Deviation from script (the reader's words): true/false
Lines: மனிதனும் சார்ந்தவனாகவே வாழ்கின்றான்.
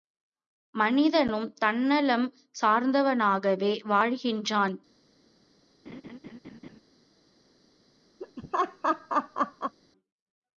true